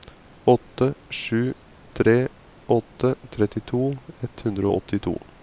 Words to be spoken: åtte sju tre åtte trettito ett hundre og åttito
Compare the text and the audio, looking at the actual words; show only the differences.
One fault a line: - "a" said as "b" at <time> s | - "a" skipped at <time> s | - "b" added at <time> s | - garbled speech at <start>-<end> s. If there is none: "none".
none